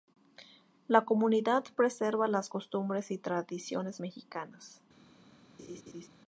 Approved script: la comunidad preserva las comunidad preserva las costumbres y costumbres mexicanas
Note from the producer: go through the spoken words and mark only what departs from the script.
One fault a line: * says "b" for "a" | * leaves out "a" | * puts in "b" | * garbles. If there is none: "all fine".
* leaves out "comunidad preserva las"
* says "tradiciones" for "costumbres"